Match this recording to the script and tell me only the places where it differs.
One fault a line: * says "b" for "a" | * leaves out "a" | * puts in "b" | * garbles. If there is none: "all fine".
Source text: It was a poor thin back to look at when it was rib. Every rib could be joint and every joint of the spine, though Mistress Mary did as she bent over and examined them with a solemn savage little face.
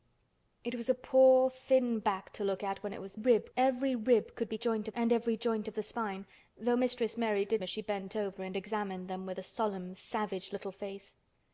all fine